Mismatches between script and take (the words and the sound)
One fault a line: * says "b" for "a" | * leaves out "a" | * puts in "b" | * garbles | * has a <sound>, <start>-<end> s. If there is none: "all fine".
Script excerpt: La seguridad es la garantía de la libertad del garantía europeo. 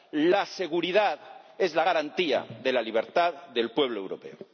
* says "pueblo" for "garantía"